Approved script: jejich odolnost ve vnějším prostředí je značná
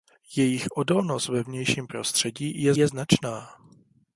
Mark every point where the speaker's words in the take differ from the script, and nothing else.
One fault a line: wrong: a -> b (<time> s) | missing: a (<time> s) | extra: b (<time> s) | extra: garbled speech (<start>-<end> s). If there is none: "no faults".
extra: je (2.8 s)